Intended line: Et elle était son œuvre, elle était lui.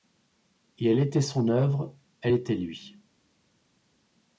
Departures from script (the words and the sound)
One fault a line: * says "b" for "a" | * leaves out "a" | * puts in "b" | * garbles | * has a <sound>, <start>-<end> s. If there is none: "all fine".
all fine